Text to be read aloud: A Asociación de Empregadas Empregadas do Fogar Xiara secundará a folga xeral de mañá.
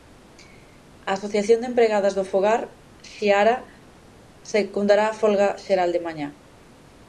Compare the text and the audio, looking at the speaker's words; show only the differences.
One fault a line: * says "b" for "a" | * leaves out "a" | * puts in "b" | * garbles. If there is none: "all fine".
* leaves out "Empregadas"